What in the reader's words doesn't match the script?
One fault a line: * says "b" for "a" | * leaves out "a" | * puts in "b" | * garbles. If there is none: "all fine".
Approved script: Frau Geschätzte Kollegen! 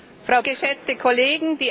all fine